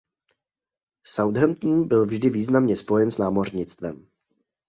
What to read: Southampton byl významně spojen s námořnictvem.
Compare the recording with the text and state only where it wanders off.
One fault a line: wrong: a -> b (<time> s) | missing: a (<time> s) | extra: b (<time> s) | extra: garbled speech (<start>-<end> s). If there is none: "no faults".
extra: vždy (2.0 s)